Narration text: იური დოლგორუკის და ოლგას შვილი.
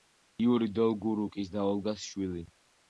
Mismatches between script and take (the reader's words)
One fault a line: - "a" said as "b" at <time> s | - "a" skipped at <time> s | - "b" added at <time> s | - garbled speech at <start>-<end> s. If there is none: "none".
none